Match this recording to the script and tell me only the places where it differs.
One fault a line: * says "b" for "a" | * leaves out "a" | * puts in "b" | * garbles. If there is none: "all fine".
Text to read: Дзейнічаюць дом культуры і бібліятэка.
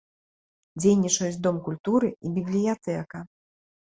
all fine